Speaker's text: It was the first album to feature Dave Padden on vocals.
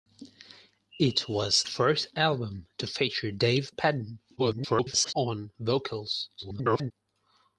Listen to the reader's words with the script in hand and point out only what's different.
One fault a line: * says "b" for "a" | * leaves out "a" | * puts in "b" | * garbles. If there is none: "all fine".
* leaves out "the"
* garbles
* garbles